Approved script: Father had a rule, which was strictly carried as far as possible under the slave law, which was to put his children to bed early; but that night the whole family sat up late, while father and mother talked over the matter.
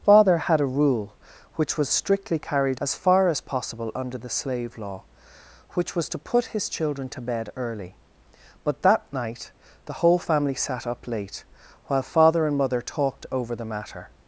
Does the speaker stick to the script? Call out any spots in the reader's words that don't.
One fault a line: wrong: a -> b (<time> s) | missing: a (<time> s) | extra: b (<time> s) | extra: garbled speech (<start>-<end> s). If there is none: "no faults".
no faults